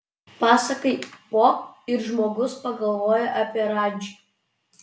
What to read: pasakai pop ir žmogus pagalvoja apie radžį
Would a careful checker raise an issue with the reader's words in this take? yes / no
no